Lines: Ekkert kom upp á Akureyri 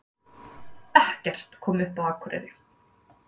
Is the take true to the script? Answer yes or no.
yes